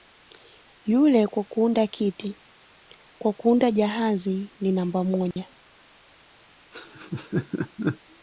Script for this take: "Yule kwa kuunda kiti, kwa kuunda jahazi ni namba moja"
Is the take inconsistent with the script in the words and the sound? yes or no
yes